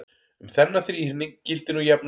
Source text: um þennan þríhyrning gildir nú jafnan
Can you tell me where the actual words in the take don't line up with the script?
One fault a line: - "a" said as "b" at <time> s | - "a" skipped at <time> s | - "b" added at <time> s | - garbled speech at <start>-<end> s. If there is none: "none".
none